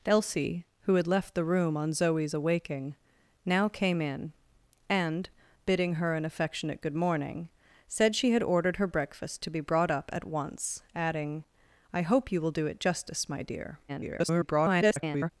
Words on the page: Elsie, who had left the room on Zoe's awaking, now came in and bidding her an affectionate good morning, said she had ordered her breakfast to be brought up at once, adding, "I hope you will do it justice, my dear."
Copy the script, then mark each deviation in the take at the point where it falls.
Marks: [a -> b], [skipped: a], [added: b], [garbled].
Elsie, who had left the room on Zoe's awaking, now came in and bidding her an affectionate good morning, said she had ordered her breakfast to be brought up at once, adding, "I hope you will do it justice, my dear." [garbled]